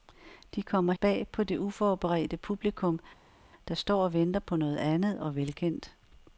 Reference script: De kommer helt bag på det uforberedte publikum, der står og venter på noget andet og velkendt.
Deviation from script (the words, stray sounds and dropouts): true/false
true